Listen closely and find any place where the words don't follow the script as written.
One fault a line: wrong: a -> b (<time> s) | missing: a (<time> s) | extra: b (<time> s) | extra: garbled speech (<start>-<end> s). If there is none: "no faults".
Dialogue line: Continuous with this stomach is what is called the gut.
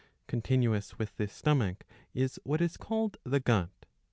no faults